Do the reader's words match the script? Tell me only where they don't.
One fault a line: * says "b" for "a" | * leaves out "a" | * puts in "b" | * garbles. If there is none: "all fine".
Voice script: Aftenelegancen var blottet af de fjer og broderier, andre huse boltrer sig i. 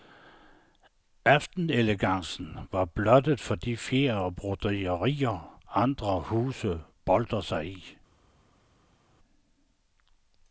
* says "for" for "af"